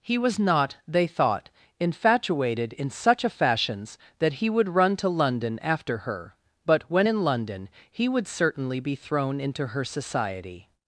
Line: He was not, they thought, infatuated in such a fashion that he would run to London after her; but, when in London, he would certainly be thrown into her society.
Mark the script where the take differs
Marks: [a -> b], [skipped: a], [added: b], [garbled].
He was not, they thought, infatuated in such a [fashion -> fashions] that he would run to London after her; but, when in London, he would certainly be thrown into her society.